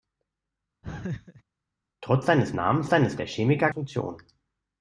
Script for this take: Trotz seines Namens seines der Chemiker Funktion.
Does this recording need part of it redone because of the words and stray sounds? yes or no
yes